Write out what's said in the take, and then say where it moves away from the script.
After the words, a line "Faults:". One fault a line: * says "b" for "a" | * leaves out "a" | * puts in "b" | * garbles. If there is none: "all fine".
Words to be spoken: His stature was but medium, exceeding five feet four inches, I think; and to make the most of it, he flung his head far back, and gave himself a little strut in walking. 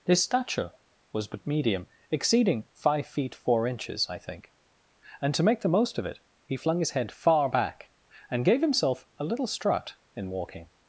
His stature was but medium, exceeding five feet four inches, I think; and to make the most of it, he flung his head far back, and gave himself a little strut in walking.
Faults:
all fine